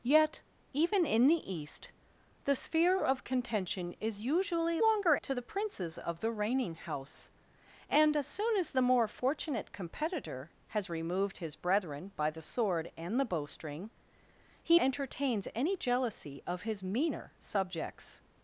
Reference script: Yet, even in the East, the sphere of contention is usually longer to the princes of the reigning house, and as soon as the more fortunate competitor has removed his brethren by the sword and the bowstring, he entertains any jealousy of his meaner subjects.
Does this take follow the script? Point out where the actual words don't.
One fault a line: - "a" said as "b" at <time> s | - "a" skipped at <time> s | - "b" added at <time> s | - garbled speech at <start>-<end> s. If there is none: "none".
none